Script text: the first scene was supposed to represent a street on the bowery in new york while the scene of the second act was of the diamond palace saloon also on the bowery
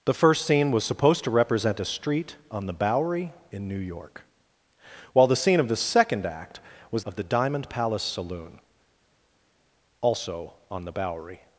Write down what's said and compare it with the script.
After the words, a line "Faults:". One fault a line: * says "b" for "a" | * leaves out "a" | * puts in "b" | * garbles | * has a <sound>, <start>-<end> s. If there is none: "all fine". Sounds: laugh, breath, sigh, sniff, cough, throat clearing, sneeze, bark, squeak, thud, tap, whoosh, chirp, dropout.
the first scene was supposed to represent a street on the bowery in new york while the scene of the second act was of the diamond palace saloon also on the bowery
Faults:
all fine